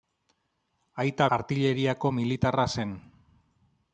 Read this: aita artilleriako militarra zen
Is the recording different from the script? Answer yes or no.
no